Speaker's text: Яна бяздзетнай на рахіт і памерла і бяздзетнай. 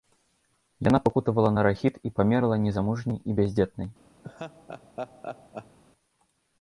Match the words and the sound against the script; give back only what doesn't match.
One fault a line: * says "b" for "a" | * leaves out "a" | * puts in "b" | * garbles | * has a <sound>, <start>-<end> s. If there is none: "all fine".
* says "пакутавала" for "бяздзетнай"
* puts in "незамужняй"
* has a laugh, 4.2-5.8 s